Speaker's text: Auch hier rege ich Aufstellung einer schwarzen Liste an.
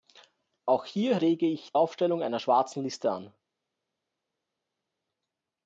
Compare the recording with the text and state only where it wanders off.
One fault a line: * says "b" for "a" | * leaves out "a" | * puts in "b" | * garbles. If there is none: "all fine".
all fine